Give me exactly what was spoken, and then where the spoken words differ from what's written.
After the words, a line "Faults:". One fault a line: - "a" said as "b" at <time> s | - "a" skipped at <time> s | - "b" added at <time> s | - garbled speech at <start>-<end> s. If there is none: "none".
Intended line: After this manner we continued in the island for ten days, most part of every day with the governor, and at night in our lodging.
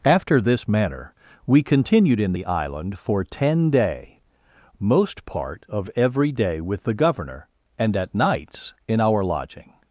After this manner we continued in the island for ten day, most part of every day with the governor, and at nights in our lodging.
Faults:
- "days" said as "day" at 3.7 s
- "night" said as "nights" at 8.1 s